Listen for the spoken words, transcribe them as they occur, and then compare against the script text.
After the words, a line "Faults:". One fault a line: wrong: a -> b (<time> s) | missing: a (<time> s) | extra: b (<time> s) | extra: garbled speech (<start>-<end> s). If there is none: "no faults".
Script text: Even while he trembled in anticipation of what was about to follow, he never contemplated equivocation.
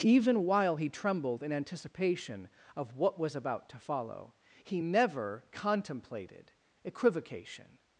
Even while he trembled in anticipation of what was about to follow, he never contemplated equivocation.
Faults:
no faults